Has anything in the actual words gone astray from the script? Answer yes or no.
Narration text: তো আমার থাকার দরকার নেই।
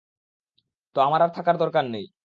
yes